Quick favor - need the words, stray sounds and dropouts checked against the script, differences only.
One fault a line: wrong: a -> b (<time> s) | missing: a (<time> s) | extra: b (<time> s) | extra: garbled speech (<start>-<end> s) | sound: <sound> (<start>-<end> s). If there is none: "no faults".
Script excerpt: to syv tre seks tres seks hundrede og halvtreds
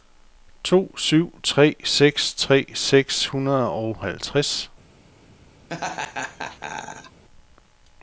sound: laugh (5.7-7.2 s)